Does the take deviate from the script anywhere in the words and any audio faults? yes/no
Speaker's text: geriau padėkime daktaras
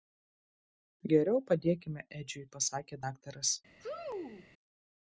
yes